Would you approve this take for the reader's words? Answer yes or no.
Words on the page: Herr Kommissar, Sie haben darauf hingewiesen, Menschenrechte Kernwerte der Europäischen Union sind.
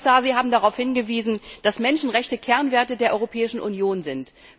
no